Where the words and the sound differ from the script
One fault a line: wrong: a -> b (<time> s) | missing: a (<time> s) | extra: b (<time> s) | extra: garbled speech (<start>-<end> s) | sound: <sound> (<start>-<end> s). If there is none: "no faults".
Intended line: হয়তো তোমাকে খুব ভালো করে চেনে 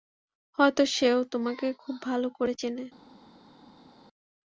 extra: সেও (0.9 s)